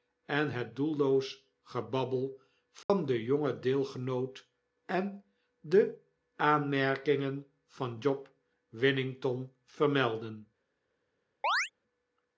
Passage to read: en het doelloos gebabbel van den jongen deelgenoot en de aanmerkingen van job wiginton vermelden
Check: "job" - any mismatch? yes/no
no